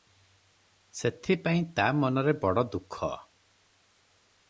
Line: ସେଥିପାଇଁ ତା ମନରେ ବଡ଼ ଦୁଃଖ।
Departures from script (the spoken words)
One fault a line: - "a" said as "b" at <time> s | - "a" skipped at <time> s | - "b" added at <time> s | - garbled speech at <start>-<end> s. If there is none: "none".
none